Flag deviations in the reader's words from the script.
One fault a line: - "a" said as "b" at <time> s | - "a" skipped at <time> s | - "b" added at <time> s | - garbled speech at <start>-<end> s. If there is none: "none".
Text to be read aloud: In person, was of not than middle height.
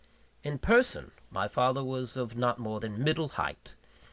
- "my father" added at 1.3 s
- "more" added at 2.6 s